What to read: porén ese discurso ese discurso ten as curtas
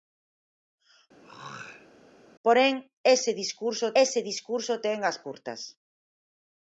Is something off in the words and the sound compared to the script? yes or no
yes